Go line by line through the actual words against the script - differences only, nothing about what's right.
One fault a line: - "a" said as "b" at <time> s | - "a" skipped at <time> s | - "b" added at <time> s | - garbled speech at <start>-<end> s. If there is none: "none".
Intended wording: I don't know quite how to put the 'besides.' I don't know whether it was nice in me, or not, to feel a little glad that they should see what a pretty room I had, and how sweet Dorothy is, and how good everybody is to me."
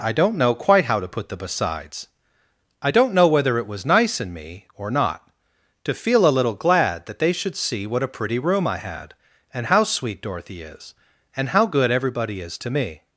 none